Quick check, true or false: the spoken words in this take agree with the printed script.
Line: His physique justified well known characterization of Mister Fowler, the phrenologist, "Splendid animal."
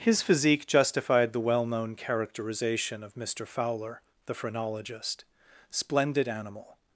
false